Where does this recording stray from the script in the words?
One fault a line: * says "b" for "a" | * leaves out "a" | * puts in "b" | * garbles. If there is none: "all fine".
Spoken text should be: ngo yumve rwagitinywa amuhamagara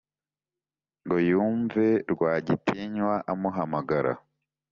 all fine